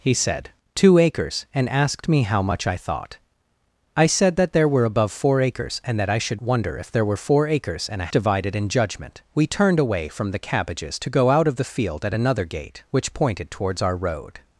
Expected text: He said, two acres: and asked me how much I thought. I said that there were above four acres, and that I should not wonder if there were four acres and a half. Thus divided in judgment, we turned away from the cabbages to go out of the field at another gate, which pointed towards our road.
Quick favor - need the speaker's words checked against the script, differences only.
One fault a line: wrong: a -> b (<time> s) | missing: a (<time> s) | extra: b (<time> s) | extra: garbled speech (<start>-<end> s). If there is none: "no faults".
missing: not (6.4 s)
missing: half Thus (8.1 s)